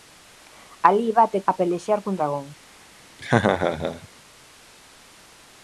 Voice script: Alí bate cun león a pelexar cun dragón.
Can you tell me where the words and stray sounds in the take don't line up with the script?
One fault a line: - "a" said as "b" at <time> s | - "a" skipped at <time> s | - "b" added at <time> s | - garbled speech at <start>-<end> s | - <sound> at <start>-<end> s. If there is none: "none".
- "cun león" skipped at 1.4 s
- laugh at 3.2-4.1 s